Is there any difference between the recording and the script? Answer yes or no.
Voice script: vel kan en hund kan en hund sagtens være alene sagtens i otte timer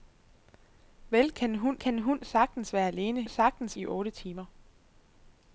no